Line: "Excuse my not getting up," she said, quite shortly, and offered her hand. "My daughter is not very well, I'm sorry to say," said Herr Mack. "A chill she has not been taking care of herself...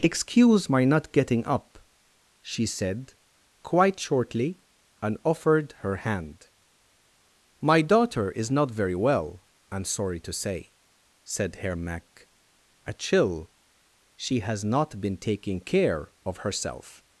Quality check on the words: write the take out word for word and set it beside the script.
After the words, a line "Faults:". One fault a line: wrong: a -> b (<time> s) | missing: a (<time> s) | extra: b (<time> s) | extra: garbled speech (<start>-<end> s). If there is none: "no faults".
"Excuse my not getting up," she said, quite shortly, and offered her hand. "My daughter is not very well, I'm sorry to say," said Herr Mack. "A chill she has not been taking care of herself...
Faults:
no faults